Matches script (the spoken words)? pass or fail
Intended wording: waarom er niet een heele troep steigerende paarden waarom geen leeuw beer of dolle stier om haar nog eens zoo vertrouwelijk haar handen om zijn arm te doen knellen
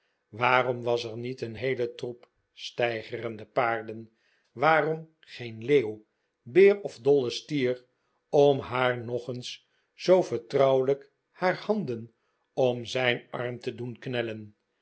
fail